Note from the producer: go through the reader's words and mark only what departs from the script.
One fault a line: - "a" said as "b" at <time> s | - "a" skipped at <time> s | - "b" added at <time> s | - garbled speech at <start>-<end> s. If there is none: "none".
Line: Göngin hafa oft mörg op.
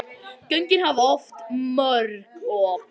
none